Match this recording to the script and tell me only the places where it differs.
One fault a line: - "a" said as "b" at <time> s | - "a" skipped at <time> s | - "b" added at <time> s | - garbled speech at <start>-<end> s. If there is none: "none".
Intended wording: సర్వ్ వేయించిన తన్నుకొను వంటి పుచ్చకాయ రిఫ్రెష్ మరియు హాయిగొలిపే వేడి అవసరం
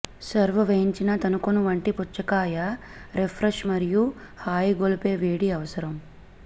none